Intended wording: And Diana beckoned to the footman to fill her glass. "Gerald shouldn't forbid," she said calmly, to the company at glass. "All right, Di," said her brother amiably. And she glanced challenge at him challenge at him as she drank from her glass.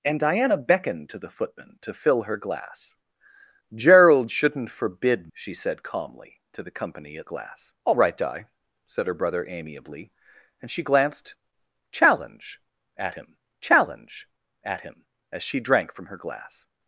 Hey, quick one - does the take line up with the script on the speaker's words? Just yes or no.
yes